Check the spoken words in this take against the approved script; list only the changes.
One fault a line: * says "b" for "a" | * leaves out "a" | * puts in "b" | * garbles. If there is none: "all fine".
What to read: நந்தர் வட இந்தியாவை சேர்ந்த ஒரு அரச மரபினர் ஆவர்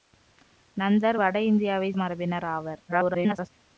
* leaves out "சேர்ந்த ஒரு அரச"
* garbles